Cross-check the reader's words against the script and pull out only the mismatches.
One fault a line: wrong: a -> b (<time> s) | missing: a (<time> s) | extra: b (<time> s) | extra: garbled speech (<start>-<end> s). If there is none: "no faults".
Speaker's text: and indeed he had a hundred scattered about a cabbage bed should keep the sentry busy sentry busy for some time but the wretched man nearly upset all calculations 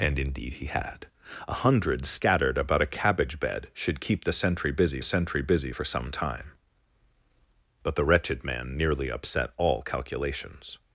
no faults